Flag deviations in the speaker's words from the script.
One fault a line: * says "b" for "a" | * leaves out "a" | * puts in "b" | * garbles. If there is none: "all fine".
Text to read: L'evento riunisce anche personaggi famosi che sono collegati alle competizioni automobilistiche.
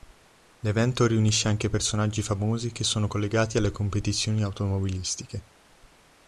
all fine